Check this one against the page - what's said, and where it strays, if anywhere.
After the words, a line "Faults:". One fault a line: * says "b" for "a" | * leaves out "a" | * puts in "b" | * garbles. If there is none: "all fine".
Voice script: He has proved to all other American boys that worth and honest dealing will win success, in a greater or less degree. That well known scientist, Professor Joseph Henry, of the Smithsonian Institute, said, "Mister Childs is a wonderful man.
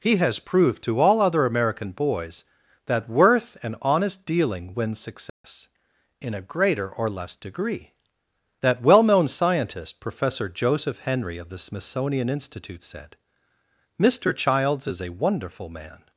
He has proved to all other American boys that worth and honest dealing win success, in a greater or less degree. That well known scientist, Professor Joseph Henry, of the Smithsonian Institute, said, "Mister Childs is a wonderful man.
Faults:
* leaves out "will"